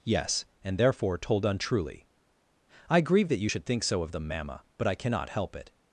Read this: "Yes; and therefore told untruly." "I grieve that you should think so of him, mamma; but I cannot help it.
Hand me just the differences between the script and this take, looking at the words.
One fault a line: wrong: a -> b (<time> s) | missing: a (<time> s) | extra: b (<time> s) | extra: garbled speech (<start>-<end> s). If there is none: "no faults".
wrong: him -> them (4.1 s)